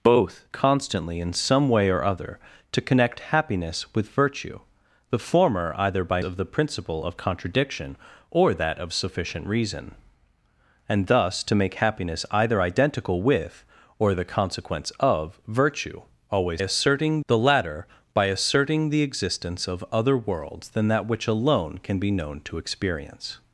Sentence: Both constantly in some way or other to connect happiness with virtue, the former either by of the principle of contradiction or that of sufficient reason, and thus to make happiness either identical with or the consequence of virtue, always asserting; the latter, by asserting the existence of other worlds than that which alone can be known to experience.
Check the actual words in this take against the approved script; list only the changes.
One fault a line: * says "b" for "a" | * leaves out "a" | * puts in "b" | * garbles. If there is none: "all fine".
all fine